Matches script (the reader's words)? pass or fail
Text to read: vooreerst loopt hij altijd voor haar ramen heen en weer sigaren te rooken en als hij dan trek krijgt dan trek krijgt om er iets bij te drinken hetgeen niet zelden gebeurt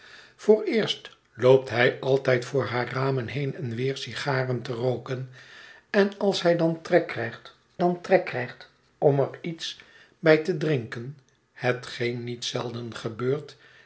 pass